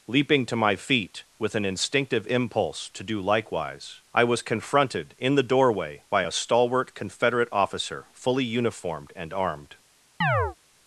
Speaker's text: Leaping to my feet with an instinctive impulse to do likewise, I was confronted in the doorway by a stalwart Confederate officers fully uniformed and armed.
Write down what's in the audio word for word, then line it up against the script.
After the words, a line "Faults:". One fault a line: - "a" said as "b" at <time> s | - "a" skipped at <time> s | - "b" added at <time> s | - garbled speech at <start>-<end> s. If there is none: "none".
Leaping to my feet with an instinctive impulse to do likewise, I was confronted in the doorway by a stalwart Confederate officer fully uniformed and armed.
Faults:
- "officers" said as "officer" at 7.5 s